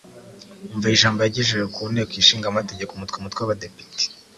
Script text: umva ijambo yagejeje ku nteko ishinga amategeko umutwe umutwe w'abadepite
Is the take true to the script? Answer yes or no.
yes